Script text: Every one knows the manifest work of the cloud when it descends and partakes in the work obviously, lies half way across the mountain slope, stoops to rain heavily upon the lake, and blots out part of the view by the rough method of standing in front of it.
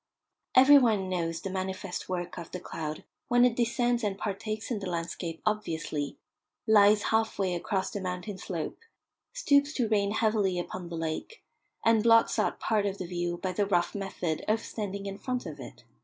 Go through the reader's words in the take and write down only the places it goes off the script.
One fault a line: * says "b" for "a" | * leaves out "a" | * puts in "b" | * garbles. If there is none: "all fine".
* says "landscape" for "work"